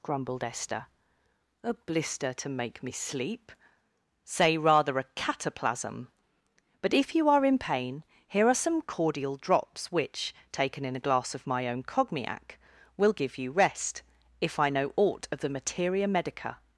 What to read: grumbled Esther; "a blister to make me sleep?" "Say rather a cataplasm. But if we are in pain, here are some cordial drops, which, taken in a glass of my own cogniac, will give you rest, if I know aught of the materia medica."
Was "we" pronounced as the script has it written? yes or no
no